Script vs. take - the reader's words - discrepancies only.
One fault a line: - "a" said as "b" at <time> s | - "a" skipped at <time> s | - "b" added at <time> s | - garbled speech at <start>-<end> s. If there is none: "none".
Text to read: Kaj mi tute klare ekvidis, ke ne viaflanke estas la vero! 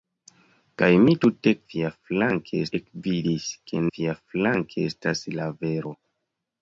- "klare" said as "viaflanke" at 1.7 s
- "ne" skipped at 3.9 s